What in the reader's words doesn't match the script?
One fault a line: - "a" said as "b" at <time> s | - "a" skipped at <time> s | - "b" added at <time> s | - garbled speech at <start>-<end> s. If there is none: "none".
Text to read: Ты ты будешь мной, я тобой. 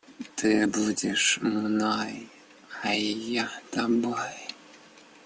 - "ты" skipped at 0.7 s
- "а" added at 2.8 s